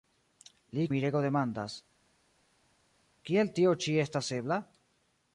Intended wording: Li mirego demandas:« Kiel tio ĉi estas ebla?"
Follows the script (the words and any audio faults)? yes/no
yes